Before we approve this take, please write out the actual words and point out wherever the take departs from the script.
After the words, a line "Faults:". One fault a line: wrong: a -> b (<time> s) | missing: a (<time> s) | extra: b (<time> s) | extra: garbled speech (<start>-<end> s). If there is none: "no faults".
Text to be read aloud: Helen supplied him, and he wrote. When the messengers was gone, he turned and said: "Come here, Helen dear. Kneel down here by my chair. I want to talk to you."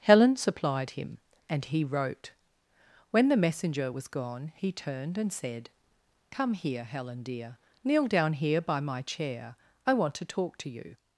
Helen supplied him, and he wrote. When the messenger was gone, he turned and said: "Come here, Helen dear. Kneel down here by my chair. I want to talk to you."
Faults:
wrong: messengers -> messenger (3.4 s)